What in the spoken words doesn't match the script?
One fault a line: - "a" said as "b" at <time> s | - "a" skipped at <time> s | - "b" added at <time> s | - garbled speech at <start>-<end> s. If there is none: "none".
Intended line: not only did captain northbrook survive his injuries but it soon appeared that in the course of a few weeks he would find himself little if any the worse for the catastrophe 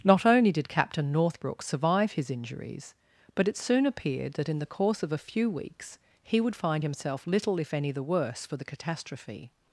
none